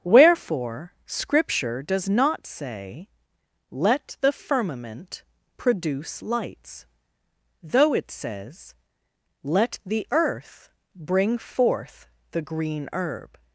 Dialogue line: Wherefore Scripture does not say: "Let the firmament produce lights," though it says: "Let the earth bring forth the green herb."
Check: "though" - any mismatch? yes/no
no